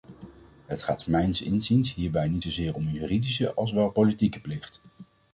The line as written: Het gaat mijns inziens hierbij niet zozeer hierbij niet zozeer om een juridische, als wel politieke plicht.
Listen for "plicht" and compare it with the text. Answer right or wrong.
right